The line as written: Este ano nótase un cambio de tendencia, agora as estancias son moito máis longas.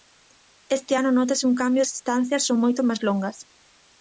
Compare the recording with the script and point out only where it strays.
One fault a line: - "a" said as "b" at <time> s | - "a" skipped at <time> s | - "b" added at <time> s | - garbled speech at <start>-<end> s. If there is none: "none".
- "de tendencia agora" skipped at 1.8 s